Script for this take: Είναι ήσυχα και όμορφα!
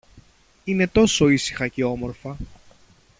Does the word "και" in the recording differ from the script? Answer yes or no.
no